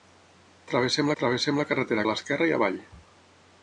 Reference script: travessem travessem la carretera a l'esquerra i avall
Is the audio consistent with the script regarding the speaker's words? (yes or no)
yes